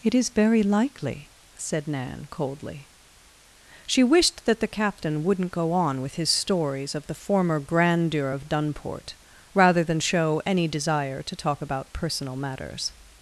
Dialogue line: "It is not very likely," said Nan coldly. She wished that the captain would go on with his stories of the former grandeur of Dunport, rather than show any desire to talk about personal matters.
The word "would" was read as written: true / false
false